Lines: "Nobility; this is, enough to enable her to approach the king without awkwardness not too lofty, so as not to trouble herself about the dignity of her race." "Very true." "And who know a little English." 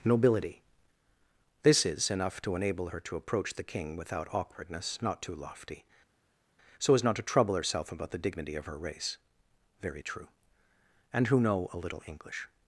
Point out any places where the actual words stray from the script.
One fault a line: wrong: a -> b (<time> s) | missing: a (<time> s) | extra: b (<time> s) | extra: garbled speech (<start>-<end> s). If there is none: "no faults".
no faults